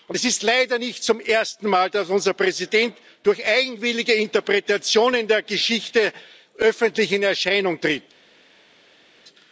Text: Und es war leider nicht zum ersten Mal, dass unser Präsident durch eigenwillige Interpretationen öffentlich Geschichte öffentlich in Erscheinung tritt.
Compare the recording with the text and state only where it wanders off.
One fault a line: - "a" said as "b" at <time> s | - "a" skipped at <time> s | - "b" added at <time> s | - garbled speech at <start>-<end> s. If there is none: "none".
- "war" said as "ist" at 0.2 s
- "öffentlich" said as "der" at 5.3 s